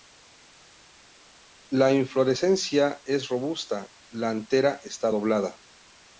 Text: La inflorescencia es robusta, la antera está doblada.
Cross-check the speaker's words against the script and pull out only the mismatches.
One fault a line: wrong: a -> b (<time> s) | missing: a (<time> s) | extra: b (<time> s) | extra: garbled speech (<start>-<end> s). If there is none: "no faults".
no faults